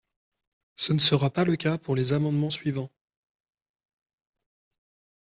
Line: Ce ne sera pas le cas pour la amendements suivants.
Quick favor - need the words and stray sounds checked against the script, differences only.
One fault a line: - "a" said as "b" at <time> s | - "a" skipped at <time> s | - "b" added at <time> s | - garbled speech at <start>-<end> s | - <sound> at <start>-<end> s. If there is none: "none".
- "la" said as "les" at 1.9 s